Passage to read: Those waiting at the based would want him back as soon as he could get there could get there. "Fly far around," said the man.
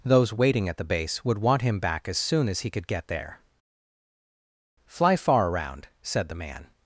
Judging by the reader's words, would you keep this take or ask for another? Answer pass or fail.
fail